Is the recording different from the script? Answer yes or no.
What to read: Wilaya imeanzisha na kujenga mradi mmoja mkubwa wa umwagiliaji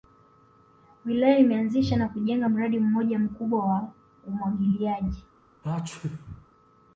no